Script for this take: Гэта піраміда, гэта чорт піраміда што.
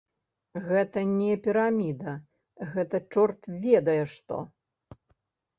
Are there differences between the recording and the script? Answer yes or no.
yes